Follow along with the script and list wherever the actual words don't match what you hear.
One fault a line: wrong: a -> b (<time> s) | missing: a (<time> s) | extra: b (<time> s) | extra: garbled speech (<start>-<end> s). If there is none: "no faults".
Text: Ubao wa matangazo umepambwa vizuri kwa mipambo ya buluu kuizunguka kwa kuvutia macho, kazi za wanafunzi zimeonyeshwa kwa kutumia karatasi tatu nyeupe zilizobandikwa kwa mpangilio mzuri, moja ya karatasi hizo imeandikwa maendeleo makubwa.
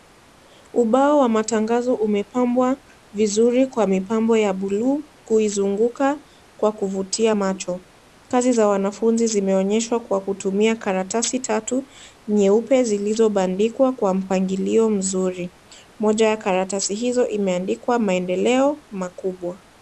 no faults